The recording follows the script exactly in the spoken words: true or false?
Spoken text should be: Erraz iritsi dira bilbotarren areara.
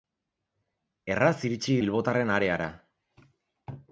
false